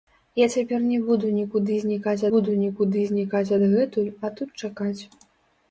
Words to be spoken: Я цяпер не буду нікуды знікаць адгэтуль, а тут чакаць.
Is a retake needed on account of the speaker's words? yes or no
yes